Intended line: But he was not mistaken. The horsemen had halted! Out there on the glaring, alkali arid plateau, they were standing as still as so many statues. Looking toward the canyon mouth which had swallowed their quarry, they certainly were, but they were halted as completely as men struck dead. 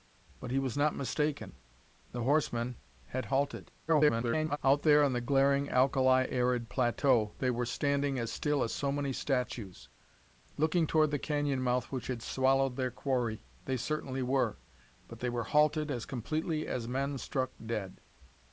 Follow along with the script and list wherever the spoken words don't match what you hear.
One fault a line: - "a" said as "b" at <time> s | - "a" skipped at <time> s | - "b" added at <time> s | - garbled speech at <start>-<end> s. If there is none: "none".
- garbled speech at 3.9-4.6 s